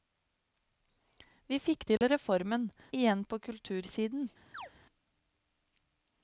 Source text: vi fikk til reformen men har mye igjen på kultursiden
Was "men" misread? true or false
true